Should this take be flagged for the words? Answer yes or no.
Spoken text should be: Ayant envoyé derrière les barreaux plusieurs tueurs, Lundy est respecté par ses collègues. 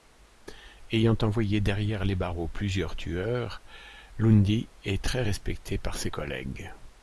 yes